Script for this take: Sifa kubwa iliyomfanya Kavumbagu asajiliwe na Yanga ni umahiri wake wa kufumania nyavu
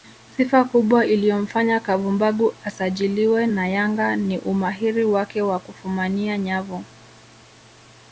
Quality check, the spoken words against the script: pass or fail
pass